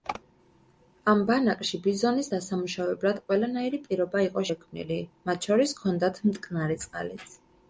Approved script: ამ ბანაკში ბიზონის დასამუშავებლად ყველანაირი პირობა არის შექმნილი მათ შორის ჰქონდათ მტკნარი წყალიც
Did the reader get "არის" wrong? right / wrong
wrong